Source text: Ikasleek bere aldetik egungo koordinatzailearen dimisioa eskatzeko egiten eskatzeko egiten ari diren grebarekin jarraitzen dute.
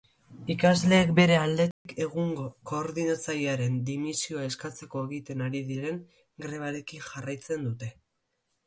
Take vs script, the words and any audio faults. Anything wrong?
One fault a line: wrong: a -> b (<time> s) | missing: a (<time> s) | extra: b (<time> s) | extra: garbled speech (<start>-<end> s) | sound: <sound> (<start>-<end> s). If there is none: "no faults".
sound: dropout (1.7-1.9 s)
missing: eskatzeko egiten (5.5 s)